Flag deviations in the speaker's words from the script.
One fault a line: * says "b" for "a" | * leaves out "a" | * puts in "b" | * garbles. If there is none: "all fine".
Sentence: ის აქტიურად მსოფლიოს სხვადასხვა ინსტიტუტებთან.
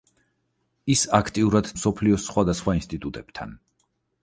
all fine